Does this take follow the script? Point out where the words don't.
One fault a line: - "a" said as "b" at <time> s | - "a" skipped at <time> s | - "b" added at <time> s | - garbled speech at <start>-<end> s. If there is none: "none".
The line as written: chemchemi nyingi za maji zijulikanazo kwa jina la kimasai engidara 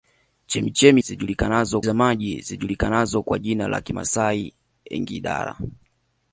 - "nyingi" said as "zijulikanazo" at 1.0 s